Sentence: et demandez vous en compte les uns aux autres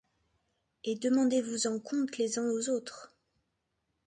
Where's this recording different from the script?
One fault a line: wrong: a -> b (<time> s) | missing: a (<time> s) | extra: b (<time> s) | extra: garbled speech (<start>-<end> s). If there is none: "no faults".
no faults